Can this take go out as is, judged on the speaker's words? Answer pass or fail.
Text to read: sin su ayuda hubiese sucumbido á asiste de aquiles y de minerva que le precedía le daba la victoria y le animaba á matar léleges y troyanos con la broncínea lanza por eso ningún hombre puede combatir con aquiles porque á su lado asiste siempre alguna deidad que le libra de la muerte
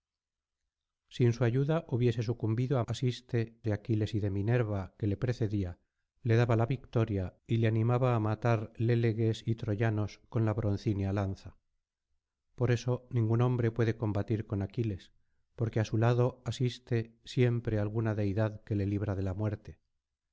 pass